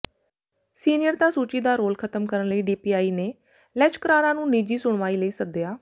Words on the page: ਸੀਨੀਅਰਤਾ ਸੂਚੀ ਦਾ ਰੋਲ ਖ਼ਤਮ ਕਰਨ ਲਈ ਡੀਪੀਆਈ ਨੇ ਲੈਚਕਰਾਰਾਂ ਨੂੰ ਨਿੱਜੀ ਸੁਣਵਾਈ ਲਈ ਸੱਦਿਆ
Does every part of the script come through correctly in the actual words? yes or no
yes